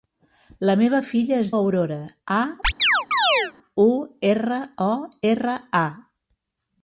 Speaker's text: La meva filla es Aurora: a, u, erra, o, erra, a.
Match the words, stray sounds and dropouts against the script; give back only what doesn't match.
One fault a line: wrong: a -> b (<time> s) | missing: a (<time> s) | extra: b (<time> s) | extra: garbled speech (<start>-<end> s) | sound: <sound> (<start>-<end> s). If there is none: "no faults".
sound: chirp (2.6-3.5 s)